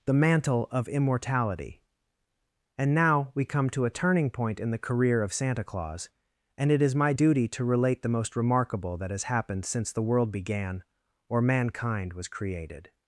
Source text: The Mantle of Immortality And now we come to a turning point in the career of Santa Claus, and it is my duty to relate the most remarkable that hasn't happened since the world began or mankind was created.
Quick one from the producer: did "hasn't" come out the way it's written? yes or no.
no